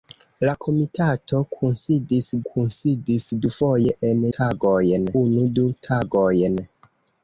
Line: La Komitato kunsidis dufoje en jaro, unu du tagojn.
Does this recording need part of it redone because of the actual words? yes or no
yes